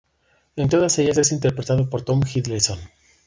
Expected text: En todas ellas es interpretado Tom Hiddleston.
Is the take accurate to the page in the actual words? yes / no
no